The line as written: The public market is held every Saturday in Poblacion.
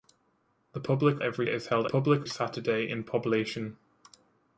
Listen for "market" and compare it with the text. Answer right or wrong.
wrong